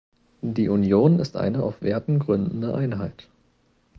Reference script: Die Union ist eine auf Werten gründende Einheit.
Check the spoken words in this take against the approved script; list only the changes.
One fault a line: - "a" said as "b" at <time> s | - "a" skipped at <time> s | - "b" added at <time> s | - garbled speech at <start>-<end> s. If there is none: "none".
none